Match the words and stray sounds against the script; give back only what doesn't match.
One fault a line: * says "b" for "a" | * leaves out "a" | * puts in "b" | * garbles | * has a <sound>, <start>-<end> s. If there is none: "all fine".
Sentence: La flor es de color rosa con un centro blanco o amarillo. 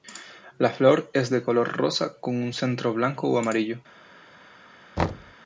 * has a thud, 5.0-5.3 s